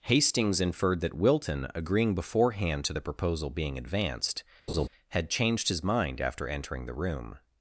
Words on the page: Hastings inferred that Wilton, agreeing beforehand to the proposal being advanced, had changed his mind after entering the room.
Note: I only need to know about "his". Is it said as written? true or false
true